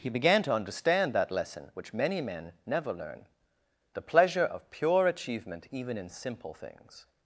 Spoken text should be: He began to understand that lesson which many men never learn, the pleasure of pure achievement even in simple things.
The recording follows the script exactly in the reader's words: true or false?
true